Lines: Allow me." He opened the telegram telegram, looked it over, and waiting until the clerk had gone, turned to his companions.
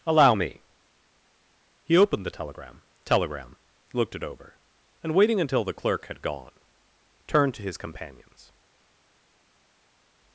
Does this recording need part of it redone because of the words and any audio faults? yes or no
no